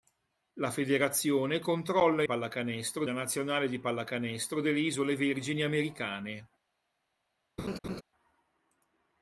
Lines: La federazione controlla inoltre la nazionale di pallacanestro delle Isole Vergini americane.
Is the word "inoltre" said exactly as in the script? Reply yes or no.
no